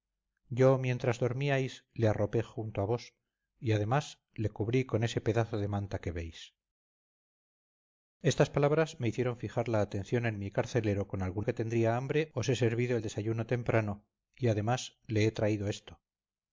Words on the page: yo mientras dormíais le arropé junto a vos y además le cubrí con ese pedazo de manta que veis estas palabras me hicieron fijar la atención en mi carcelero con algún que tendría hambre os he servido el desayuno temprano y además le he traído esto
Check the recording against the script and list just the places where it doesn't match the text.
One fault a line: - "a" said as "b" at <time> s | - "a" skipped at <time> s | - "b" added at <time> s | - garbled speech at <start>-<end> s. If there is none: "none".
none